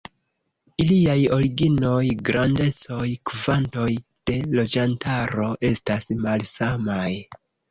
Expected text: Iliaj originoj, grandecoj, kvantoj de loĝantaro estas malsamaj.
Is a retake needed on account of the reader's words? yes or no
no